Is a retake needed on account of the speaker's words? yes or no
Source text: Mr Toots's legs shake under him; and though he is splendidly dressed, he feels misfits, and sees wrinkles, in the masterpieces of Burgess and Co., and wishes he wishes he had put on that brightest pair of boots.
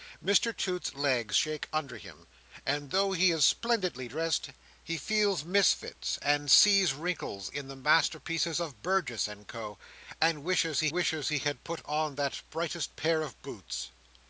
no